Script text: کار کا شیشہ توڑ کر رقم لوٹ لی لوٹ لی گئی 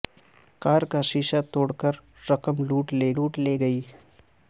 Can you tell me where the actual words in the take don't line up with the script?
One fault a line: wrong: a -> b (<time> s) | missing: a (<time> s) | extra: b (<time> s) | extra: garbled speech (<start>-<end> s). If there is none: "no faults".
no faults